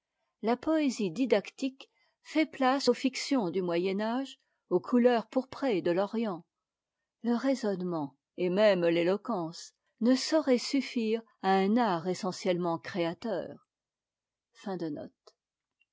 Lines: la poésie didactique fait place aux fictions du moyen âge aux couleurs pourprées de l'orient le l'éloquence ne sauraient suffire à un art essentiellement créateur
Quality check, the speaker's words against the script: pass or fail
fail